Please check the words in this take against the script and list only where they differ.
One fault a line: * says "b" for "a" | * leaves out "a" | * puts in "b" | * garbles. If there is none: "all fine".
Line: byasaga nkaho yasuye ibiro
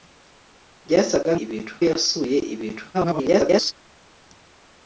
* says "ibiro" for "nkaho"
* garbles